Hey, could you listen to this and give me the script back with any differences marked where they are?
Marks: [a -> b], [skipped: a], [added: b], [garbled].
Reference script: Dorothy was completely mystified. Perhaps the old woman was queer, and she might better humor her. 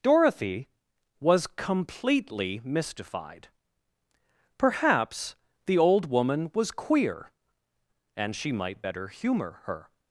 Dorothy was completely mystified. Perhaps the old woman was queer, and she might better humor her.